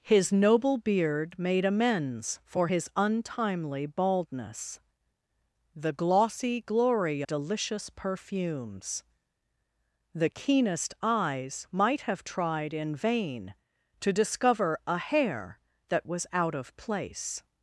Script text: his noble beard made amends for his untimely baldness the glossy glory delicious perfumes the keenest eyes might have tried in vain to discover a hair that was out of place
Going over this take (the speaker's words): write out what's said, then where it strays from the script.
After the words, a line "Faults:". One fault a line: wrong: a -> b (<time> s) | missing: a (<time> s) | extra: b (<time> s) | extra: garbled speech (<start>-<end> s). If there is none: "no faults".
his noble beard made amends for his untimely baldness the glossy glory delicious perfumes the keenest eyes might have tried in vain to discover a hair that was out of place
Faults:
no faults